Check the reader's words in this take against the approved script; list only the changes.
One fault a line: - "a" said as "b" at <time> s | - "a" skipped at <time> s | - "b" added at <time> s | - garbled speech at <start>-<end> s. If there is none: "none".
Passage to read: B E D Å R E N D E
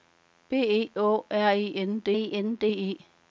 - "D" skipped at 0.9 s
- "N D E" added at 2.3 s